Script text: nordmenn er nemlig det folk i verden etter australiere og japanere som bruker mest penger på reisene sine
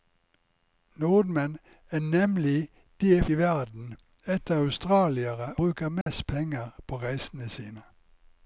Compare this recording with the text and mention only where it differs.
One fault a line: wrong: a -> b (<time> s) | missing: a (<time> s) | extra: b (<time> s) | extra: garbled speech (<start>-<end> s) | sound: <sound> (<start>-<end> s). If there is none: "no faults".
missing: folk (3.3 s)
missing: og japanere som (5.5 s)
sound: dropout (6.0-6.1 s)